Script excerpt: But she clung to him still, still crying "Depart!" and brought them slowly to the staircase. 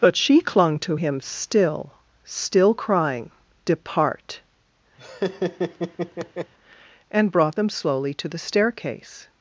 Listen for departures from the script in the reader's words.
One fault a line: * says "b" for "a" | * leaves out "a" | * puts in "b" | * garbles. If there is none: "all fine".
all fine